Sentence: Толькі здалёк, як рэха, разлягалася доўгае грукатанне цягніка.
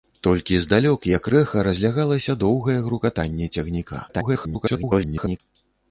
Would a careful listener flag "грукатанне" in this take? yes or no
no